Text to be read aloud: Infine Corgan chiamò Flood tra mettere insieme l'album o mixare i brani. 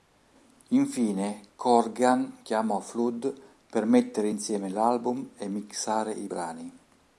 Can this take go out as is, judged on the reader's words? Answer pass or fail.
fail